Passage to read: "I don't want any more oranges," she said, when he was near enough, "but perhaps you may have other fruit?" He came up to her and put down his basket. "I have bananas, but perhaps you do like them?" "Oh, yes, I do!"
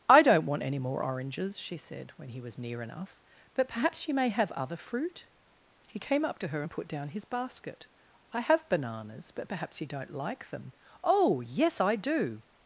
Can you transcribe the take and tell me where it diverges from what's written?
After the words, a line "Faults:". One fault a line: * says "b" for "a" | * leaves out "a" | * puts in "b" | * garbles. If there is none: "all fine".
"I don't want any more oranges," she said, when he was near enough, "but perhaps you may have other fruit?" He came up to her and put down his basket. "I have bananas, but perhaps you don't like them?" "Oh, yes, I do!"
Faults:
* says "don't" for "do"